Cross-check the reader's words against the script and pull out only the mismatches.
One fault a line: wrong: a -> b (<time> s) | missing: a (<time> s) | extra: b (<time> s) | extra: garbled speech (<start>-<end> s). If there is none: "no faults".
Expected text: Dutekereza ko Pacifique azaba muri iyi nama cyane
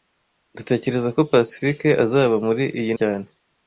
missing: nama (2.9 s)